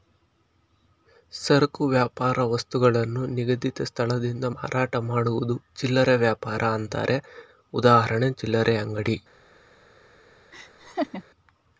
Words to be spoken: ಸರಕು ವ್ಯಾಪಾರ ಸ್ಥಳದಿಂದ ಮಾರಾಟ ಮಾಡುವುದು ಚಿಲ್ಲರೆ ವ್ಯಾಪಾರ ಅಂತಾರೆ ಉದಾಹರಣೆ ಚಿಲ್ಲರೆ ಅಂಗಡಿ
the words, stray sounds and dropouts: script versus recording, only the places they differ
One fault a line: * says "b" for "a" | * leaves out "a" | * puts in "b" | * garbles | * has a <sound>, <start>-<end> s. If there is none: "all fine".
* puts in "ವಸ್ತುಗಳನ್ನು ನಿಗದಿತ"
* has a laugh, 10.5-11.2 s